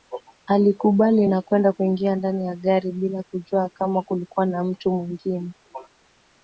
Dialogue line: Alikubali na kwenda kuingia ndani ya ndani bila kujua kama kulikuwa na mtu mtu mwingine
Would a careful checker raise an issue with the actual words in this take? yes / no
yes